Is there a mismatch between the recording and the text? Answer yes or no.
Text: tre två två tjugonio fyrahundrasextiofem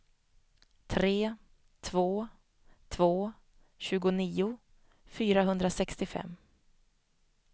no